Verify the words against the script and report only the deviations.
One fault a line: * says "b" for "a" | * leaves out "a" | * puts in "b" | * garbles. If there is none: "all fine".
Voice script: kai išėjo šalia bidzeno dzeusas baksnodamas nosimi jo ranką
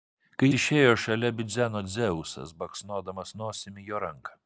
all fine